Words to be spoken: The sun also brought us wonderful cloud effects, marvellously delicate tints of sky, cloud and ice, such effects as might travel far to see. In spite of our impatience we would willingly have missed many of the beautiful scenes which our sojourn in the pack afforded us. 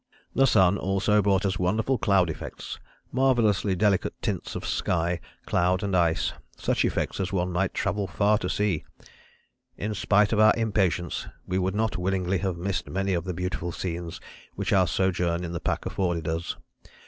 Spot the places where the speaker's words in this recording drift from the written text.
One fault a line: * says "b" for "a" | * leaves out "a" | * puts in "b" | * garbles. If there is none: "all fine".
* puts in "one"
* puts in "not"